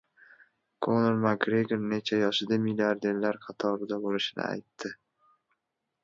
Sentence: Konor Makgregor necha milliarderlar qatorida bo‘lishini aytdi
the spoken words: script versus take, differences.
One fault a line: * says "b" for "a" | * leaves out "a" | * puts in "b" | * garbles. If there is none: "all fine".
* puts in "yoshida"